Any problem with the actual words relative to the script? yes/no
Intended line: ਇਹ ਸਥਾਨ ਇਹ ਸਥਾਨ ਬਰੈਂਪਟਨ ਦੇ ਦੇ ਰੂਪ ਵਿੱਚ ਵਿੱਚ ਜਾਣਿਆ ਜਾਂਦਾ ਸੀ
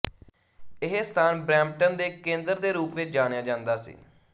yes